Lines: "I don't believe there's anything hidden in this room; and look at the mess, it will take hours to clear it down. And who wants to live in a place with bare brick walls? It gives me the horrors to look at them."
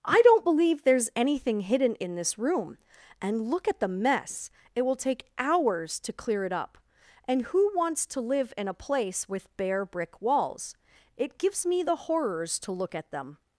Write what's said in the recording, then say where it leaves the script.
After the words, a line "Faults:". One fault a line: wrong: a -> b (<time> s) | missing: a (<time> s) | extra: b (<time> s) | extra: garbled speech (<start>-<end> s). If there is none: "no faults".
"I don't believe there's anything hidden in this room; and look at the mess, it will take hours to clear it up. And who wants to live in a place with bare brick walls? It gives me the horrors to look at them."
Faults:
wrong: down -> up (6.5 s)